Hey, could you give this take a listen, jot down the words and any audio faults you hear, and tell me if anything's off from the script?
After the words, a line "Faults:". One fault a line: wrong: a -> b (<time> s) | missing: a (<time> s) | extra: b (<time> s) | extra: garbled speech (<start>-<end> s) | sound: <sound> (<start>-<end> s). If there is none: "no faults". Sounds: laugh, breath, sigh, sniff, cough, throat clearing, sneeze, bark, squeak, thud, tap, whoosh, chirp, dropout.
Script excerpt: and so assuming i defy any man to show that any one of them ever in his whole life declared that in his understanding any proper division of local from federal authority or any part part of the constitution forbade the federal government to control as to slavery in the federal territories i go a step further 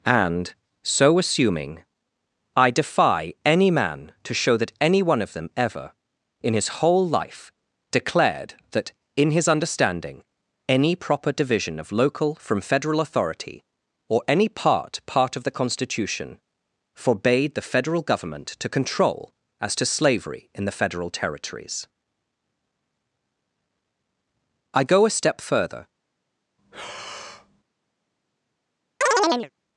and so assuming i defy any man to show that any one of them ever in his whole life declared that in his understanding any proper division of local from federal authority or any part part of the constitution forbade the federal government to control as to slavery in the federal territories i go a step further
Faults:
sound: breath (26.6-27.6 s)
sound: chirp (29.0-29.5 s)